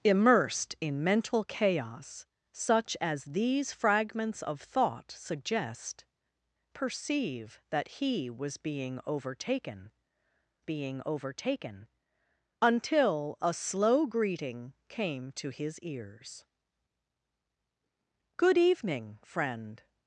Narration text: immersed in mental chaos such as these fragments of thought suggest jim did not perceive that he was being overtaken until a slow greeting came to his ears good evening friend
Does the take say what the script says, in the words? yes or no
no